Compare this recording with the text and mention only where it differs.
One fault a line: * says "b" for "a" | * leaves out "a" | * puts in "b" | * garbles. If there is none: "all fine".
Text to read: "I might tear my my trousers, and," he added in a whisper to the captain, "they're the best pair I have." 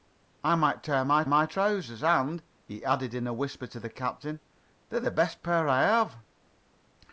all fine